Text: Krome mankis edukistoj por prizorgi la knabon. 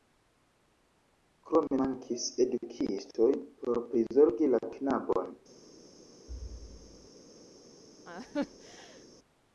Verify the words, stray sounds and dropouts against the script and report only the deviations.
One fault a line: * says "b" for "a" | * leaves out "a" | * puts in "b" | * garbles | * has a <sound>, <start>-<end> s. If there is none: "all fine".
* has a thud, 6.3-7.1 s
* has a laugh, 8.0-9.1 s